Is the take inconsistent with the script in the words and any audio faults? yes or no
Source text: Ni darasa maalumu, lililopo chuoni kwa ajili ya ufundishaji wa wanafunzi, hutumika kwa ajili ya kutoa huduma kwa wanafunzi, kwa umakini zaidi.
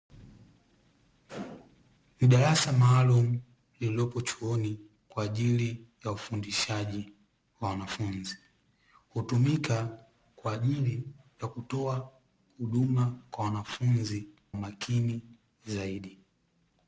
yes